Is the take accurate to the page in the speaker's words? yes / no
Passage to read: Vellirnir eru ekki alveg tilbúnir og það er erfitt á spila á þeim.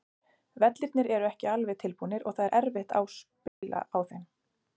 yes